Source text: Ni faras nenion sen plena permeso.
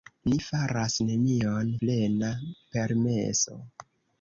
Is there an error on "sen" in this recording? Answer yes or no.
yes